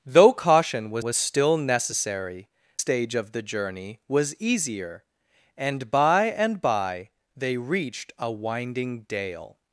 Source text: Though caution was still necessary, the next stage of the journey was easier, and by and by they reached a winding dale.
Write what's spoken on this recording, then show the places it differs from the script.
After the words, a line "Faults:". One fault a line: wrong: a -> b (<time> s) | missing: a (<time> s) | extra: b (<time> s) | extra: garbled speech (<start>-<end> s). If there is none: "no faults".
Though caution was was still necessary, stage of the journey was easier, and by and by they reached a winding dale.
Faults:
extra: was (1.0 s)
missing: the next (2.5 s)